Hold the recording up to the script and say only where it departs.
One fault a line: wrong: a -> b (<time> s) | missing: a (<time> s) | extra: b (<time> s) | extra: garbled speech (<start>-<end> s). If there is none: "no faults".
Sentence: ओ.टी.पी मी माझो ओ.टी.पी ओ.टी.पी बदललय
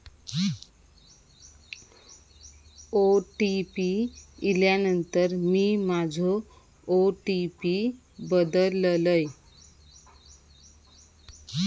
extra: इल्यानंतर (4.4 s)
missing: ओ.टी.पी (7.8 s)